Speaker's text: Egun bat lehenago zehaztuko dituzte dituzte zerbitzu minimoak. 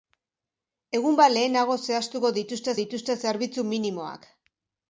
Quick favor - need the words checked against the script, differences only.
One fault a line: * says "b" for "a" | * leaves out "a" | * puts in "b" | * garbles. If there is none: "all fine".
all fine